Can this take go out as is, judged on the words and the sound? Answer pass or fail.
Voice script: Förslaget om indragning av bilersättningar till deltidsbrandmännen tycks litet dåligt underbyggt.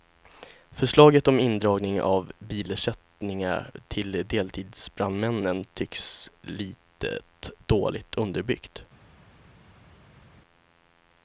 pass